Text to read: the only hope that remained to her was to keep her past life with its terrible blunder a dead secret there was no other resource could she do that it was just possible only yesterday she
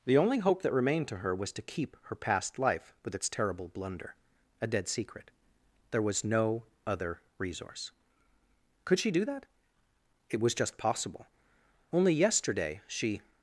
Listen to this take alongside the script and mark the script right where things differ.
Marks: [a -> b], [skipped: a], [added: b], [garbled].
the only hope that remained to her was to keep her past life with its terrible blunder a dead secret there was no other resource could she do that it was just possible only yesterday she